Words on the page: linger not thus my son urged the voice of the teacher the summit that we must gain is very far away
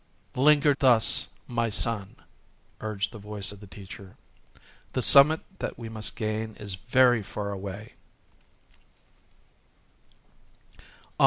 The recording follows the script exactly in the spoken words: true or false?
false